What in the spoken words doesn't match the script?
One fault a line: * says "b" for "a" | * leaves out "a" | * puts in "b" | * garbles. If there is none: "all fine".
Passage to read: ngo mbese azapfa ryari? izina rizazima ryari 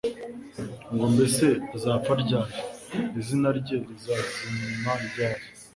* puts in "rye"